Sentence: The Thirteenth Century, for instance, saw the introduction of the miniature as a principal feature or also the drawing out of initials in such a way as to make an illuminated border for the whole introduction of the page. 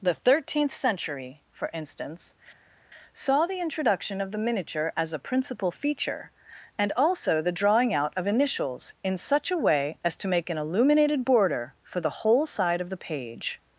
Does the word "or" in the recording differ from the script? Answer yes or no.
yes